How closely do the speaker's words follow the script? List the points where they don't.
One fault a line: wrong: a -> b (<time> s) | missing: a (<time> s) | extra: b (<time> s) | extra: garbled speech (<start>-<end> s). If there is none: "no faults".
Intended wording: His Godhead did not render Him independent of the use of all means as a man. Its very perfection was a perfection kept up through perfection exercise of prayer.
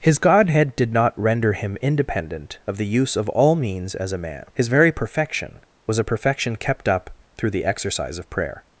wrong: Its -> His (4.5 s)
wrong: perfection -> the (7.5 s)